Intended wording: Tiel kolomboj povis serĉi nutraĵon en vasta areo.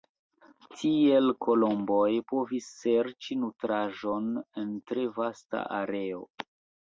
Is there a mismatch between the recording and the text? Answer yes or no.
yes